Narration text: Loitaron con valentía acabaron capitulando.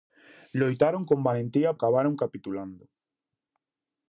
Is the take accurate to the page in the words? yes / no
yes